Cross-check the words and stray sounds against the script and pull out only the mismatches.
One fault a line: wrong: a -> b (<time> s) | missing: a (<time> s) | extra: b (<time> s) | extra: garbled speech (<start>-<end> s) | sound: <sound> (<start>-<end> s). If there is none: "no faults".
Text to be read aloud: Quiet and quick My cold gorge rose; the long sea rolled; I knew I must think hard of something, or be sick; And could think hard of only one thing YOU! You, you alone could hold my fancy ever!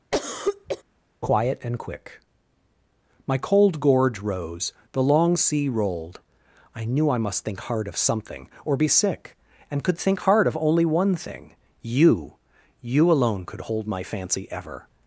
sound: cough (0.1-0.8 s)
missing: you (13.1 s)